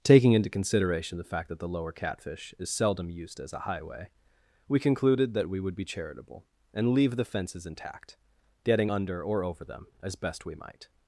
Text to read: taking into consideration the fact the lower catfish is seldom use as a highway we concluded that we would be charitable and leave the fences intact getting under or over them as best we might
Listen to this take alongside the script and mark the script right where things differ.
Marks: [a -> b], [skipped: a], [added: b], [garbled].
taking into consideration the fact [added: that] the lower catfish is seldom [use -> used] as a highway we concluded that we would be charitable and leave the fences intact getting under or over them as best we might